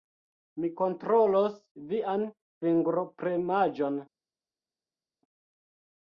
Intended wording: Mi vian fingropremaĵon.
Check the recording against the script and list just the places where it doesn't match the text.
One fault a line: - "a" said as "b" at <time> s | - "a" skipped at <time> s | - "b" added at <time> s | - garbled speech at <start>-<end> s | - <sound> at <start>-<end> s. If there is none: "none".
- "kontrolos" added at 0.8 s